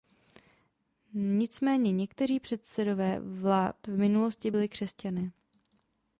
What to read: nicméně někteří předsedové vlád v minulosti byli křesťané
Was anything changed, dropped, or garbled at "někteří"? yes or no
no